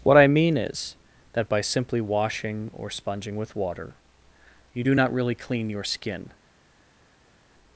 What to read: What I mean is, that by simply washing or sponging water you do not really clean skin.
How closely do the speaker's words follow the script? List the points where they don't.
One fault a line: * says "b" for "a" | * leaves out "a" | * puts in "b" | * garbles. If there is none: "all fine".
* puts in "with"
* puts in "your"